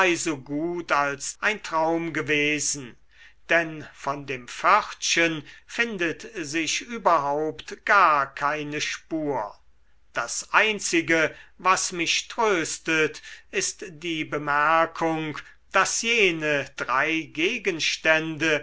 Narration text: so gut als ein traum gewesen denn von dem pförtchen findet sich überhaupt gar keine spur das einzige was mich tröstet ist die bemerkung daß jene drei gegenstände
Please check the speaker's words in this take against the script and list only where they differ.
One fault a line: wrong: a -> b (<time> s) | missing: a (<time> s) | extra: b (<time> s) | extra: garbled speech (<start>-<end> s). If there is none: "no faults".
no faults